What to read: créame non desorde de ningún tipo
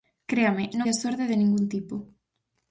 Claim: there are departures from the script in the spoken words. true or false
false